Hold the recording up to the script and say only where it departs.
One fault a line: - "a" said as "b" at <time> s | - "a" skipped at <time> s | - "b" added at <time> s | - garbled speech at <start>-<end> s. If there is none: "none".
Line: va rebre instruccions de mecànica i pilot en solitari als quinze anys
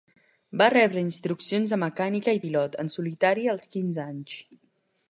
none